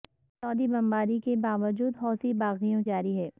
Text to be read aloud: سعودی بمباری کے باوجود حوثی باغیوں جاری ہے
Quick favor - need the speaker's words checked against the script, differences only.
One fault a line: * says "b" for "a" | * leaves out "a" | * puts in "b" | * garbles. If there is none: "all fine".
all fine